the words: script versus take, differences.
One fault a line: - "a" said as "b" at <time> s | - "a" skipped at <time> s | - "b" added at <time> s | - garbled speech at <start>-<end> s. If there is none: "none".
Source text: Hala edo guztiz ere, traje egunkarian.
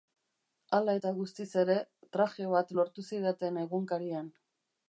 - "edo" said as "eta" at 1.0 s
- "bat lortu zidaten" added at 2.5 s